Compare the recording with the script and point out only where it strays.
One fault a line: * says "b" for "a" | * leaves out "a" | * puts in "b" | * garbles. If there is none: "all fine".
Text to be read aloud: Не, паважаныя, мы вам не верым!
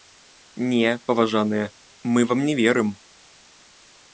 all fine